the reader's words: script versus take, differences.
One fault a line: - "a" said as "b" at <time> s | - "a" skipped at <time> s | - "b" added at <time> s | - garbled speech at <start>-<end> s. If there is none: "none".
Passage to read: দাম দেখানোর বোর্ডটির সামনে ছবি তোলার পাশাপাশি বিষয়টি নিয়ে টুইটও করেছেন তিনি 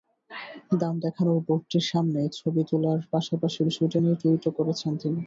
none